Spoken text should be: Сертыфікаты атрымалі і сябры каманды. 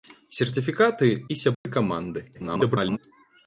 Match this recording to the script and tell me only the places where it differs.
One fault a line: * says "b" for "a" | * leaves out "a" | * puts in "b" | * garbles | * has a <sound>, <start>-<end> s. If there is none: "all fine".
* leaves out "атрымалі"
* has a dropout, 1.5-1.6 s
* garbles